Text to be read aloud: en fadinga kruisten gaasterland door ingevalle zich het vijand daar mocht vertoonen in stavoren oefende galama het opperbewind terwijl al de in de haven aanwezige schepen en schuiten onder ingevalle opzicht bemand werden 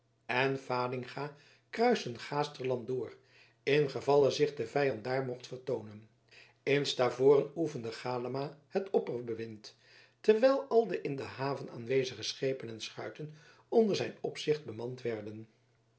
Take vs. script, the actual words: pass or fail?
fail